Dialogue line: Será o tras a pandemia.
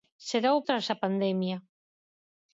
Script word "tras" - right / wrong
right